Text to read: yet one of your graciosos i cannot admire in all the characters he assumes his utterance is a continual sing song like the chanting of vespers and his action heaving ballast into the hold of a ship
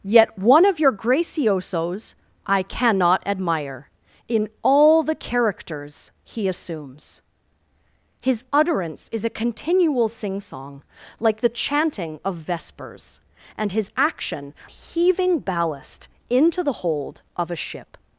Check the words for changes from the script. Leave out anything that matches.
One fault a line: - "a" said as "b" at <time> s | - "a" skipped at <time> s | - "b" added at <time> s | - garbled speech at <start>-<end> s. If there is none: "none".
none